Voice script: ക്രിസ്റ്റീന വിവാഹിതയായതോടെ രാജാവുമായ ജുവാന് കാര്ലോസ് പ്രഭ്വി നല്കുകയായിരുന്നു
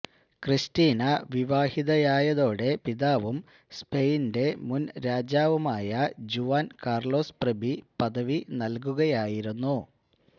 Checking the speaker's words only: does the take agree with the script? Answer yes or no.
no